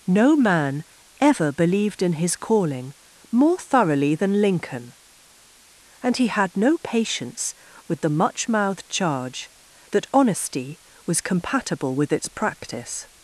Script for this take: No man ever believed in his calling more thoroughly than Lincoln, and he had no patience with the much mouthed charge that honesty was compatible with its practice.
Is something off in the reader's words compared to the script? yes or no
no